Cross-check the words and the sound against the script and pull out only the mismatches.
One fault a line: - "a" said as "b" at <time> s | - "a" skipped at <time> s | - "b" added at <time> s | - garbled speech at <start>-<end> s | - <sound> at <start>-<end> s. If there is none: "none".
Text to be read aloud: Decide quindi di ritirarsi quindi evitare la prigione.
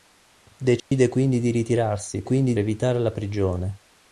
- dropout at 0.8-0.9 s